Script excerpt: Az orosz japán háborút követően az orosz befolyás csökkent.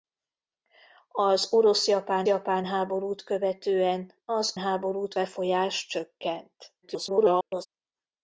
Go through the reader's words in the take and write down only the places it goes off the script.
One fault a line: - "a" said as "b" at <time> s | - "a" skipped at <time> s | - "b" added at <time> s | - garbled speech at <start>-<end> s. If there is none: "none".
- "japán" added at 2.2 s
- "orosz" said as "háborút" at 4.6 s
- garbled speech at 6.8-7.7 s